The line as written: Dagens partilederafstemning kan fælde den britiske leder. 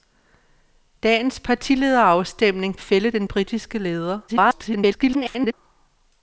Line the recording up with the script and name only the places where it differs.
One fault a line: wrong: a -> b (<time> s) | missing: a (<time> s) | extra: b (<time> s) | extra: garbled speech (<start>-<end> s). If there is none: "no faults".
missing: kan (2.8 s)
extra: garbled speech (4.3-5.5 s)